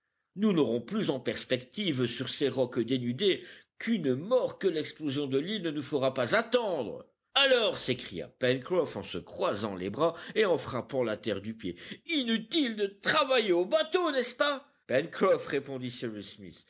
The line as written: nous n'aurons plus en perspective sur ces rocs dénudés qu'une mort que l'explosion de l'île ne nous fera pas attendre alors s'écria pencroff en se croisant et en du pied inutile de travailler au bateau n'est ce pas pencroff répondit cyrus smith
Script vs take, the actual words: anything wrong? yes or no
yes